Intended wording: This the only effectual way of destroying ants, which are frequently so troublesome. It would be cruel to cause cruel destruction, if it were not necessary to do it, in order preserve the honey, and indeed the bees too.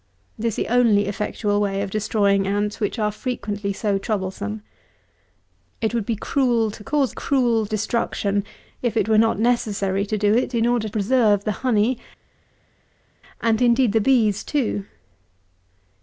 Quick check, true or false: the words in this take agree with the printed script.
true